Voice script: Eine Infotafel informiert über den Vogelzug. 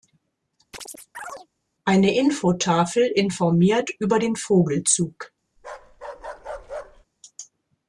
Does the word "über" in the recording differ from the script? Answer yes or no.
no